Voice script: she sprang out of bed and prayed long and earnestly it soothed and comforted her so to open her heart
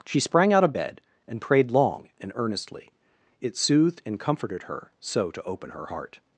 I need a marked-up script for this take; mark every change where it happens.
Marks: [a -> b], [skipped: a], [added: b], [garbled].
she sprang out of bed and prayed long and earnestly it soothed and comforted her so to open her heart